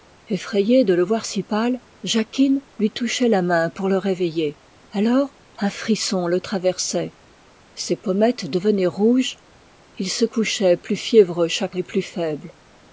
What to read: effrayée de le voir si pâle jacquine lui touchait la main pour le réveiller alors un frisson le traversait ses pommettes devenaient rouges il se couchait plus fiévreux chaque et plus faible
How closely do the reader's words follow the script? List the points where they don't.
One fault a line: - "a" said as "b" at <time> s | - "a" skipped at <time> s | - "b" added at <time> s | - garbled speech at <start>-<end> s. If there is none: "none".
none